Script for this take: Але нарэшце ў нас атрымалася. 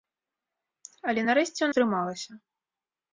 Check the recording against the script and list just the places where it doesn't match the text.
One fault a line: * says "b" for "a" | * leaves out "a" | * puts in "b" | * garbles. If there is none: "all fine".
* leaves out "нас"